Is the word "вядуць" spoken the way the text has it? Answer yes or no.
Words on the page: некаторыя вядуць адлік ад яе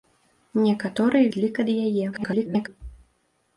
no